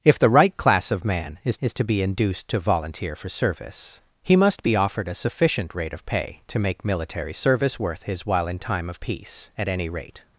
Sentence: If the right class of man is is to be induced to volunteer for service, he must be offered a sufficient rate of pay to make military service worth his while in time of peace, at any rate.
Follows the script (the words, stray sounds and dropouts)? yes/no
yes